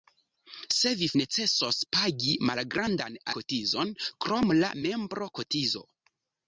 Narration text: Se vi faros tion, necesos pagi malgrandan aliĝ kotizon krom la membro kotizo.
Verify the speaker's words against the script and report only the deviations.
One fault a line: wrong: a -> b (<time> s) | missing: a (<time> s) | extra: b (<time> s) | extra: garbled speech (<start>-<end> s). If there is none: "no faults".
missing: faros tion (1.1 s)
missing: aliĝ (3.2 s)